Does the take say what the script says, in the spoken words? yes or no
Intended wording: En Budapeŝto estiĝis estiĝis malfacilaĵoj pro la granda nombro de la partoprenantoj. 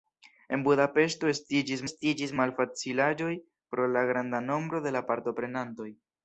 yes